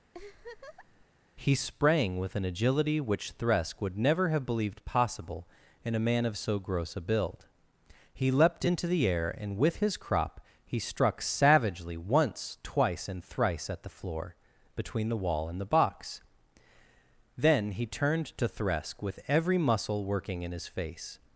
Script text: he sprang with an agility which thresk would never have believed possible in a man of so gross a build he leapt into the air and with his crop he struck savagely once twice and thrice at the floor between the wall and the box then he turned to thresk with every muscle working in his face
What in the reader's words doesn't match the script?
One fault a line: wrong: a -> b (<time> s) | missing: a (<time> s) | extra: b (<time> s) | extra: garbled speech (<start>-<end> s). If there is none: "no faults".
no faults